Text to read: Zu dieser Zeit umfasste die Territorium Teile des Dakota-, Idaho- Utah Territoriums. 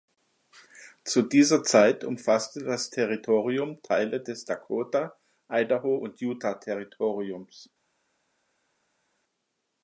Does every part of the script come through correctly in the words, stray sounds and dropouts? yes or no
no